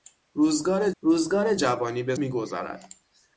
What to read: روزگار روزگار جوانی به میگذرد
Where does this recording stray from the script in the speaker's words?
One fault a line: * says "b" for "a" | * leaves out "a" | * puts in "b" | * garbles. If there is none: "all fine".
all fine